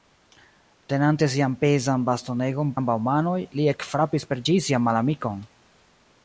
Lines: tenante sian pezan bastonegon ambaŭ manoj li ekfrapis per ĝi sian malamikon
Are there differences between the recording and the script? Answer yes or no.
no